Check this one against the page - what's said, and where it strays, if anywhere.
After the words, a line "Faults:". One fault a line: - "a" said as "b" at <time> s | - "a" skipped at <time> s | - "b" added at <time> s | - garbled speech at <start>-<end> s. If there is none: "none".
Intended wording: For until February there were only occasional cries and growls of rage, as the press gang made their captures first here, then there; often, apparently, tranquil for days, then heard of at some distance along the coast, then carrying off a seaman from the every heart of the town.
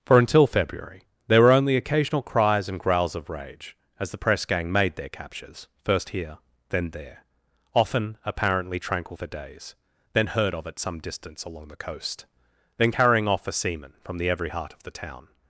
For until February there were only occasional cries and growls of rage, as the press gang made their captures first here, then there; often, apparently, tranquil for days, then heard of at some distance along the coast, then carrying off a seaman from the every heart of the town.
Faults:
none